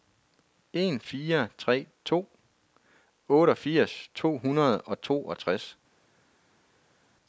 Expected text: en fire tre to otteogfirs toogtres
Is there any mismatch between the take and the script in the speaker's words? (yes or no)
yes